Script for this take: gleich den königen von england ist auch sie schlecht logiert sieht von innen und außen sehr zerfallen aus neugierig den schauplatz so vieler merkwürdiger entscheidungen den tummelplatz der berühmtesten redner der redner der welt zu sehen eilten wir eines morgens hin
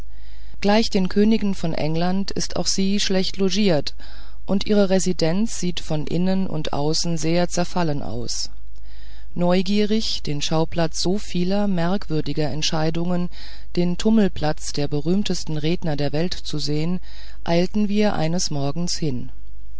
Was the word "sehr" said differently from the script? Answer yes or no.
no